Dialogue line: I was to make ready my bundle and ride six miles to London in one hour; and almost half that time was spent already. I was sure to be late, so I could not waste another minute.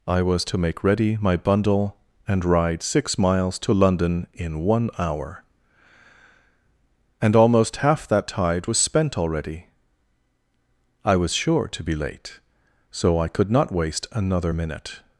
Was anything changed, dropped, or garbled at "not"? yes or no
no